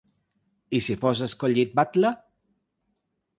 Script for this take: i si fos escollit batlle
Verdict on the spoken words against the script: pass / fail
pass